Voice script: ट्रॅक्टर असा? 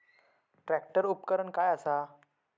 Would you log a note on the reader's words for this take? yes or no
yes